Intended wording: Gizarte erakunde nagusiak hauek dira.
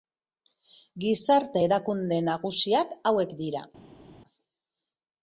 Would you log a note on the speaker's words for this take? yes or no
no